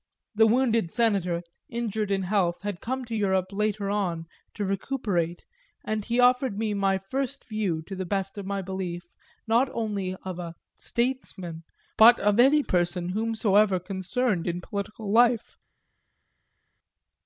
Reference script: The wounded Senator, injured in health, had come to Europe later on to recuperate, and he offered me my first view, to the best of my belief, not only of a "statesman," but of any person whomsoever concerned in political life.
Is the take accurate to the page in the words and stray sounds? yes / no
yes